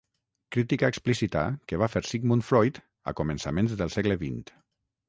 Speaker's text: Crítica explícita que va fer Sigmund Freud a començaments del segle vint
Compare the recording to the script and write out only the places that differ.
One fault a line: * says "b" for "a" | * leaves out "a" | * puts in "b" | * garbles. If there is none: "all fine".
all fine